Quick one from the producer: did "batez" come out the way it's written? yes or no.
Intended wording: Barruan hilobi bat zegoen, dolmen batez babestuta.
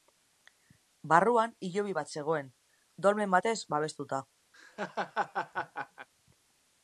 yes